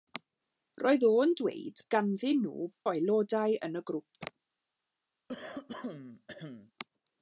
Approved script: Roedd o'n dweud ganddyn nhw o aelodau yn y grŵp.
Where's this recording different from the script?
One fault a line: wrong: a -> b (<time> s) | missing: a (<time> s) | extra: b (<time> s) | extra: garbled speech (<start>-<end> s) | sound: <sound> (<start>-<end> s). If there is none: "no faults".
sound: throat clearing (5.3-6.7 s)